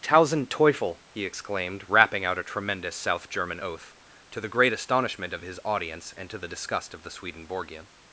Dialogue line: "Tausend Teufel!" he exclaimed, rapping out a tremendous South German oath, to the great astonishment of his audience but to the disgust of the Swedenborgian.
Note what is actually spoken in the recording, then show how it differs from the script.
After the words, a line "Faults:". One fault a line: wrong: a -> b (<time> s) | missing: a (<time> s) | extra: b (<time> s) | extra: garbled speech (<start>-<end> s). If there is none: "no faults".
"Tausend Teufel!" he exclaimed, rapping out a tremendous South German oath, to the great astonishment of his audience and to the disgust of the Swedenborgian.
Faults:
wrong: but -> and (6.1 s)